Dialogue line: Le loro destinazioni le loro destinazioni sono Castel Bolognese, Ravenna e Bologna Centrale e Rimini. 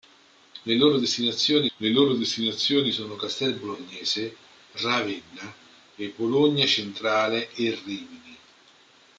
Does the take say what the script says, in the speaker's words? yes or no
yes